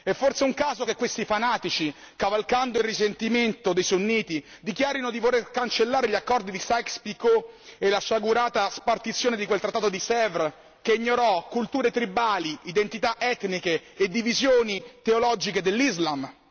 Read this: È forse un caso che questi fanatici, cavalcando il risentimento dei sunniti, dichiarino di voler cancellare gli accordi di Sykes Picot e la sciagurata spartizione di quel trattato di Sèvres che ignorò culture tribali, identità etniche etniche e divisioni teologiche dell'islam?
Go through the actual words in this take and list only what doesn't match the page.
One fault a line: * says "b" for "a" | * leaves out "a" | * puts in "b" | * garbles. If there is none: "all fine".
* leaves out "etniche"